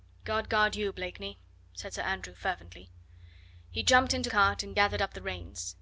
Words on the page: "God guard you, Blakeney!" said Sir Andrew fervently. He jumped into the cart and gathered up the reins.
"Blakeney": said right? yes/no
yes